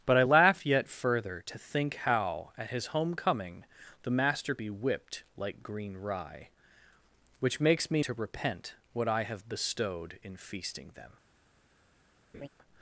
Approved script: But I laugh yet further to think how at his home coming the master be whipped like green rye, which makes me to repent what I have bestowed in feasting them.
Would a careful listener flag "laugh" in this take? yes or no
no